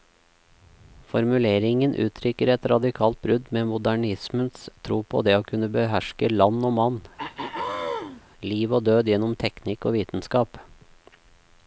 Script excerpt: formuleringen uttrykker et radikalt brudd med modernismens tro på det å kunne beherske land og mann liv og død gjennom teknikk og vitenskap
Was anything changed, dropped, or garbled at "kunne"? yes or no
no